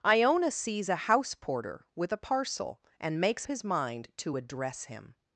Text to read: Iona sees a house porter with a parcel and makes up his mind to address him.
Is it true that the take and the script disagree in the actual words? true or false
true